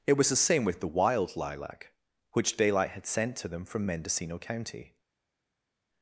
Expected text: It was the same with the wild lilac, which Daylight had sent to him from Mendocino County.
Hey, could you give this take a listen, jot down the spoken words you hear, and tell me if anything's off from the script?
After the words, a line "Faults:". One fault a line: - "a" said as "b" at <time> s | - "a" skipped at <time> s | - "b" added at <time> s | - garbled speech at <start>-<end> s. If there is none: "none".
It was the same with the wild lilac, which Daylight had sent to them from Mendocino County.
Faults:
- "him" said as "them" at 3.5 s